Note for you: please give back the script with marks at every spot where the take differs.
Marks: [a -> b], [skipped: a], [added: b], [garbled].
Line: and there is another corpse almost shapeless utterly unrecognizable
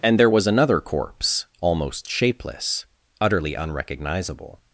and there [is -> was] another corpse almost shapeless utterly unrecognizable